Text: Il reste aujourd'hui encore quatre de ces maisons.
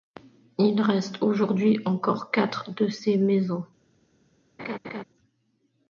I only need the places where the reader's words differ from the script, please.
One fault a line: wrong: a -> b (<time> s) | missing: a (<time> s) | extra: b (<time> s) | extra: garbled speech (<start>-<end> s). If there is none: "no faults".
no faults